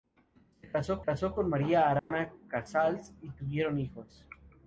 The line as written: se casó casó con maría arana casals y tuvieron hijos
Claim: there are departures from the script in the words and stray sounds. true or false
true